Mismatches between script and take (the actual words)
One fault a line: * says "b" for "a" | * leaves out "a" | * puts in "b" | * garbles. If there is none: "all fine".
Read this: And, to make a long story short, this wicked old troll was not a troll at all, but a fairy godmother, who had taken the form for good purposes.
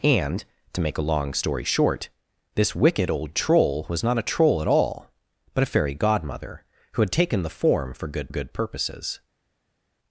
* puts in "good"